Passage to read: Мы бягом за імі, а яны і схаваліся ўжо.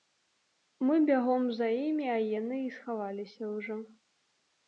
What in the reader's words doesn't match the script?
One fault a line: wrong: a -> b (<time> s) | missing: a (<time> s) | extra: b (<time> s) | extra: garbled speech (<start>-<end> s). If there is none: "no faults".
no faults